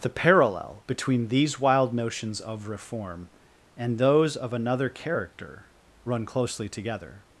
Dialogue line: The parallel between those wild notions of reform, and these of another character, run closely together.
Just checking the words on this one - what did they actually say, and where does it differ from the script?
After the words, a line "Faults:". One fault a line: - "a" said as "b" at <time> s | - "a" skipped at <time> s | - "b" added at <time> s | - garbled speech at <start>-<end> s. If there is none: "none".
The parallel between these wild notions of reform, and those of another character, run closely together.
Faults:
- "those" said as "these" at 1.3 s
- "these" said as "those" at 4.0 s